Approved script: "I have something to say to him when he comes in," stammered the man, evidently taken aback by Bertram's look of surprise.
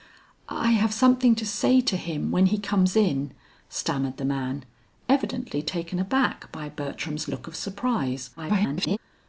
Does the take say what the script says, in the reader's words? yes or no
no